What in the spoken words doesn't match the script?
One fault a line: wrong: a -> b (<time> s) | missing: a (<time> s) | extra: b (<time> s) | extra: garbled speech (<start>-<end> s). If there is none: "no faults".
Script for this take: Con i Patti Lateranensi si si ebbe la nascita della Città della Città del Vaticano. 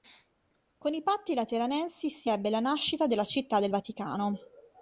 missing: si (2.3 s)
missing: della Città (3.6 s)